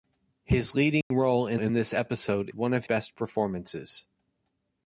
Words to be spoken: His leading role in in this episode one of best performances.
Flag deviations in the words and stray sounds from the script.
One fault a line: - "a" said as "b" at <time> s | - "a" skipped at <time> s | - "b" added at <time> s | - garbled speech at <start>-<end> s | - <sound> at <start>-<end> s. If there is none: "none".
- dropout at 1.0-1.1 s